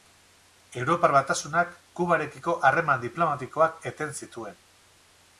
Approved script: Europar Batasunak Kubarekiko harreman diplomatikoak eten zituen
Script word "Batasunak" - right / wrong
right